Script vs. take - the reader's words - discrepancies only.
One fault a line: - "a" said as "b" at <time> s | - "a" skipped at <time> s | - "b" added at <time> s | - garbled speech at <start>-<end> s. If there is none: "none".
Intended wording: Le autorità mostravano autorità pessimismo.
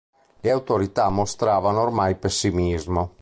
- "autorità" said as "ormai" at 1.8 s